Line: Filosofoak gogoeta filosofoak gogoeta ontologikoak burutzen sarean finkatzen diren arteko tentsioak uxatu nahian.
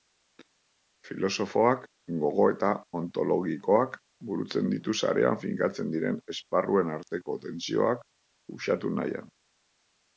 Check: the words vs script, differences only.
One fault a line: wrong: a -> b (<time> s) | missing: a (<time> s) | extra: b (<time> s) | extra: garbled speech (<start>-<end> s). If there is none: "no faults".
missing: filosofoak gogoeta (2.7 s)
extra: ditu (4.8 s)
extra: esparruen (6.4 s)